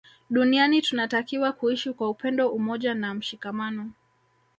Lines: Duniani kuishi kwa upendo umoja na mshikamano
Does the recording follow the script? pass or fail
fail